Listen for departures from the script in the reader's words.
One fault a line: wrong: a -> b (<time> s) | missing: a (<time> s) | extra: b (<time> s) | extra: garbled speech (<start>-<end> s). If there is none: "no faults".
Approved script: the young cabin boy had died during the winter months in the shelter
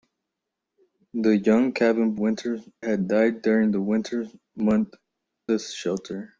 wrong: boy -> winter (2.1 s)
missing: in (5.0 s)